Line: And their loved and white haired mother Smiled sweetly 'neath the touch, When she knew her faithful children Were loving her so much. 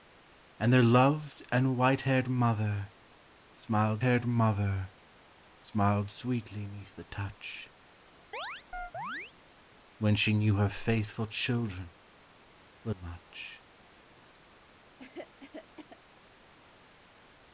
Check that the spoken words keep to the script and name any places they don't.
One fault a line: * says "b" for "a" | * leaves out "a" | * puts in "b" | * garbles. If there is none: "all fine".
* puts in "haired mother Smiled"
* leaves out "loving her so"